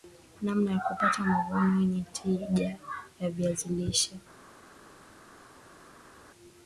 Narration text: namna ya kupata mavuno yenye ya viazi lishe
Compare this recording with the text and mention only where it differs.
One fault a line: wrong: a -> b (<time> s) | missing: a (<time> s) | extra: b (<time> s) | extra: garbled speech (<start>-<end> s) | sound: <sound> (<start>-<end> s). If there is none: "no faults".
extra: tija (2.1 s)